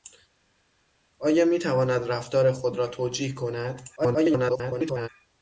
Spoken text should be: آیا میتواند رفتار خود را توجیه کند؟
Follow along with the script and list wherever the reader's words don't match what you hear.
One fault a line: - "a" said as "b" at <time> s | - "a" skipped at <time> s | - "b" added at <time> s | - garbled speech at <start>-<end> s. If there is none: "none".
- garbled speech at 4.0-5.1 s